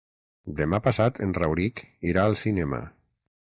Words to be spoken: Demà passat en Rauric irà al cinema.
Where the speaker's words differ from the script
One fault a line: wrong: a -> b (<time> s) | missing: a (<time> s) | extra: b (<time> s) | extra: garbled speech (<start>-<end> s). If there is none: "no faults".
no faults